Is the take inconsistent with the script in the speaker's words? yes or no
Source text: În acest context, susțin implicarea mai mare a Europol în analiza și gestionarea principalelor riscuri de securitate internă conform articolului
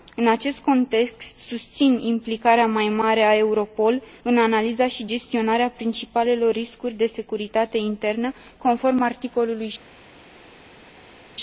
no